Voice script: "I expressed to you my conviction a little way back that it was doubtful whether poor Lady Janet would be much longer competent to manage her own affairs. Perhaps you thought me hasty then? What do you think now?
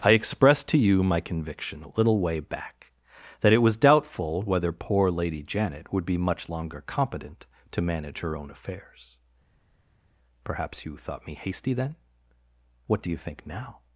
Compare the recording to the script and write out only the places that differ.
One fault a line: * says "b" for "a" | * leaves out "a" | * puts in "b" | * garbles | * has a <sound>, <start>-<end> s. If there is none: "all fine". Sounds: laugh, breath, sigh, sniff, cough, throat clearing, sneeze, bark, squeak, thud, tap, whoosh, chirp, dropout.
all fine